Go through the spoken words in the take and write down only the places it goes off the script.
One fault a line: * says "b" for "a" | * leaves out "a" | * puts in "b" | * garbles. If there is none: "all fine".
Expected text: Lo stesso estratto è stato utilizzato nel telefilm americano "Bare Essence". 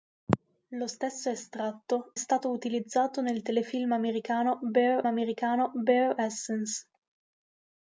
* leaves out "è"
* puts in "americano Bare"